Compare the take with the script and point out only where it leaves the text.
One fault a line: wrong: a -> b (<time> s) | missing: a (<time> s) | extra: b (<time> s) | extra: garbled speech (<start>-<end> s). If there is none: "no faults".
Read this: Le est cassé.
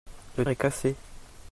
no faults